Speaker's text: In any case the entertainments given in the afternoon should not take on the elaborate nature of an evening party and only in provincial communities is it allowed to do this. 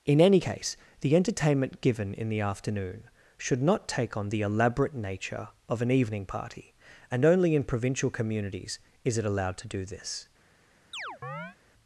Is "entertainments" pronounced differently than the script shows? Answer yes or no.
yes